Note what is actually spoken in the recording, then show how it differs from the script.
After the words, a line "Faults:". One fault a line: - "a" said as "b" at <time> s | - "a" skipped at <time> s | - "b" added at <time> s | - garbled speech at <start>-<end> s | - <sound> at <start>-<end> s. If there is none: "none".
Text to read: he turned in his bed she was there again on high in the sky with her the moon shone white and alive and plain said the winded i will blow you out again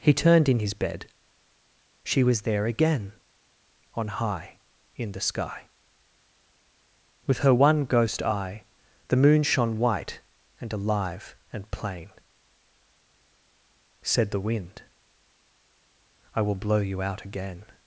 he turned in his bed she was there again on high in the sky with her one ghost eye the moon shone white and alive and plain said the wind i will blow you out again
Faults:
- "one ghost eye" added at 7.5 s
- "winded" said as "wind" at 14.5 s